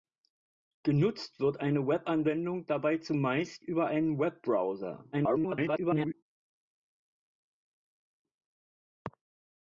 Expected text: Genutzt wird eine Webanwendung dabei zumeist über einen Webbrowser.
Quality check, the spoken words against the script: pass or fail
fail